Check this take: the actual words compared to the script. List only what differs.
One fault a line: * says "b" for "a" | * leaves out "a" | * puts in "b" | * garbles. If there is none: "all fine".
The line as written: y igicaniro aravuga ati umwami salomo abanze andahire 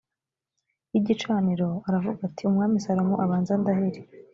all fine